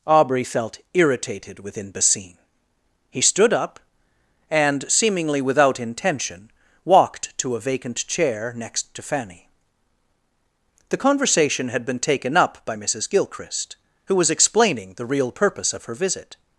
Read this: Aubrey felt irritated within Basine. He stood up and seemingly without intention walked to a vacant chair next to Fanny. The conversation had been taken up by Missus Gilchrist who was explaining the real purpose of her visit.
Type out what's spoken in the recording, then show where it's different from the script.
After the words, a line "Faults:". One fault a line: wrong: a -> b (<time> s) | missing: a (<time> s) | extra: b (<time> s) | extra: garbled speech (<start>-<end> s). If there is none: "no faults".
Aubrey felt irritated within Basine. He stood up and seemingly without intention walked to a vacant chair next to Fanny. The conversation had been taken up by Missus Gilchrist who was explaining the real purpose of her visit.
Faults:
no faults